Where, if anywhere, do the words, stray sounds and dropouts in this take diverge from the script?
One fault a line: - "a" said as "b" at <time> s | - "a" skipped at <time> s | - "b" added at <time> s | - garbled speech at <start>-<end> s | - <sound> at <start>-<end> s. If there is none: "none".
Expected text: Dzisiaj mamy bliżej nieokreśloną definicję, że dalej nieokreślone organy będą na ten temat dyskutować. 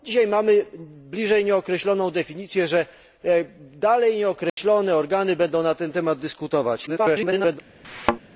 - dropout at 4.5-4.6 s
- garbled speech at 6.9-7.6 s
- thud at 7.8-8.2 s